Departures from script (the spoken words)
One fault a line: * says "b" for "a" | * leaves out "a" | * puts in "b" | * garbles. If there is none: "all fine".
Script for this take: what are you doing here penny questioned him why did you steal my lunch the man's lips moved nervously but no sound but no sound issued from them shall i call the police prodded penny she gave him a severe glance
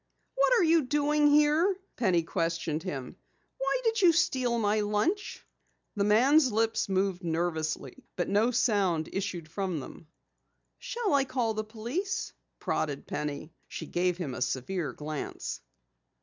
* leaves out "but no sound"